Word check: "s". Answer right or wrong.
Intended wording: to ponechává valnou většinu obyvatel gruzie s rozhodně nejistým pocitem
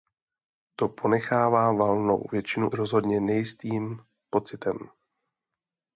wrong